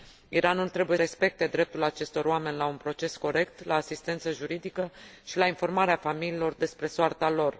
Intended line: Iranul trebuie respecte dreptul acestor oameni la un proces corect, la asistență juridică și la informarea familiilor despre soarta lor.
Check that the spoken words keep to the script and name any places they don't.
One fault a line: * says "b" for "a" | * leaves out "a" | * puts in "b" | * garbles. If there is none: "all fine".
all fine